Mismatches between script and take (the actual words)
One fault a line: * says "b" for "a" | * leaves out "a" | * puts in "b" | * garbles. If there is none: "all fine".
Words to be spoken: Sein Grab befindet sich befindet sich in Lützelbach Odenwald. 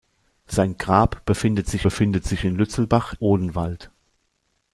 all fine